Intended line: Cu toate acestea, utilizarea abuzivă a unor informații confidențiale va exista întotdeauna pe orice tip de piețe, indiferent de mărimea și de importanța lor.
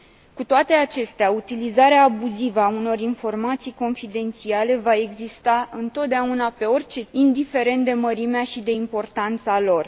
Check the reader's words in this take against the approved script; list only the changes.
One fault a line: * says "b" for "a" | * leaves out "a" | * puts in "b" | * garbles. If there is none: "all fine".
* leaves out "tip de piețe"